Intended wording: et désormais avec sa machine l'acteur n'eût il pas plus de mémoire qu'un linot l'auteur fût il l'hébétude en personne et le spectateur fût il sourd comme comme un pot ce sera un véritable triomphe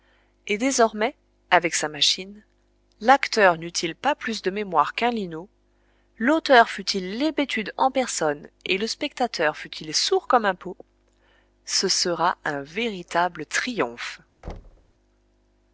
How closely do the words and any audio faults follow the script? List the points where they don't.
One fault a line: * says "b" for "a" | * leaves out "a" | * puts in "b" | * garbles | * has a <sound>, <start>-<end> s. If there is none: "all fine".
* leaves out "comme"
* has a thud, 14.4-14.9 s